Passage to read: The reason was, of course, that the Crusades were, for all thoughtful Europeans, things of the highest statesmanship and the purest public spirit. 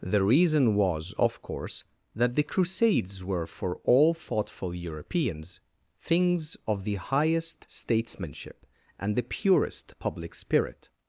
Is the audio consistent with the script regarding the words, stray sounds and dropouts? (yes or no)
yes